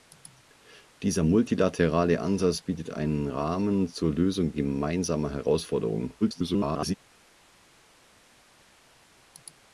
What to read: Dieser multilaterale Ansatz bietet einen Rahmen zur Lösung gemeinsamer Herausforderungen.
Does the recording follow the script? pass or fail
fail